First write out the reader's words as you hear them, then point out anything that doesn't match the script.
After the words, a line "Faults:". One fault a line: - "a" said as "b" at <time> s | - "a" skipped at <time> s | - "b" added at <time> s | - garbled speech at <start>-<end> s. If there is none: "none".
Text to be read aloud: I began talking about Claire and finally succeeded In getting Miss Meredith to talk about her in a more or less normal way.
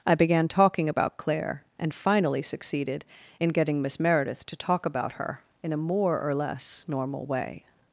I began talking about Claire and finally succeeded In getting Miss Meredith to talk about her in a more or less normal way.
Faults:
none